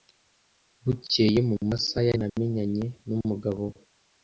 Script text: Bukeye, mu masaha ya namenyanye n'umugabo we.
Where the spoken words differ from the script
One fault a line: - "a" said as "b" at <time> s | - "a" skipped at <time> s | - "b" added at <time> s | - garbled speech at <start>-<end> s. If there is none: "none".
none